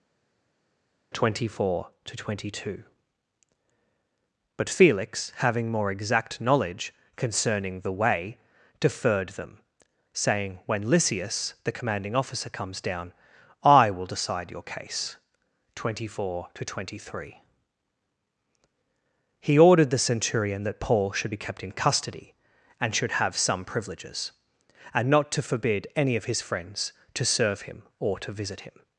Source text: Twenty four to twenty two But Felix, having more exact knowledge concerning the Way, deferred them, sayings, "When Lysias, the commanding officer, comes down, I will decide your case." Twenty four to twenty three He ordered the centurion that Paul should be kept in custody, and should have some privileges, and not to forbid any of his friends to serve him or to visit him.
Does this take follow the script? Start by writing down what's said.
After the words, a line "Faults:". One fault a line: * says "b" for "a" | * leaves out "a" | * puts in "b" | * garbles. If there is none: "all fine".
Twenty four to twenty two But Felix, having more exact knowledge concerning the Way, deferred them, saying, "When Lysias, the commanding officer, comes down, I will decide your case." Twenty four to twenty three He ordered the centurion that Paul should be kept in custody, and should have some privileges, and not to forbid any of his friends to serve him or to visit him.
Faults:
* says "saying" for "sayings"